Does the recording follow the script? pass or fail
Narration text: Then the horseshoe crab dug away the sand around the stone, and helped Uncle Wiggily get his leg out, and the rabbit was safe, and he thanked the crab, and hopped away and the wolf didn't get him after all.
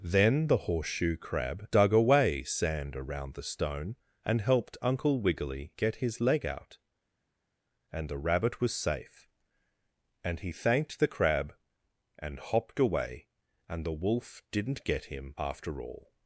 fail